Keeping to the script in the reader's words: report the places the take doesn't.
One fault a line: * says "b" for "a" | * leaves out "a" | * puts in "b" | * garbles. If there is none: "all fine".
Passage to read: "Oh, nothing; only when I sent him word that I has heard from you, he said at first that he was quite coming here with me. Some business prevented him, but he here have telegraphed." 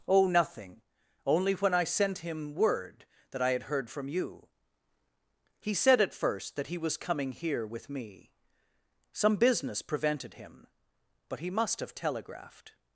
* says "had" for "has"
* leaves out "quite"
* says "must" for "here"